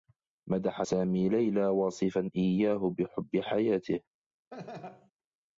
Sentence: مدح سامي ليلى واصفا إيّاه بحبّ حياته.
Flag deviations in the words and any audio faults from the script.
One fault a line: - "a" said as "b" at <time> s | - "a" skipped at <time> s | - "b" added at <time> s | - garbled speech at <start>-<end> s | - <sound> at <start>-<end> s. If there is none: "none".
- laugh at 4.5-5.1 s